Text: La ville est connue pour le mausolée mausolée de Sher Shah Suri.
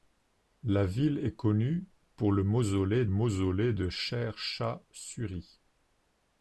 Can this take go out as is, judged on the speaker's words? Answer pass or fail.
pass